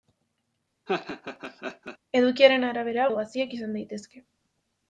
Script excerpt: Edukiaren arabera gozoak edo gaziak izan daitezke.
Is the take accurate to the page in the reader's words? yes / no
no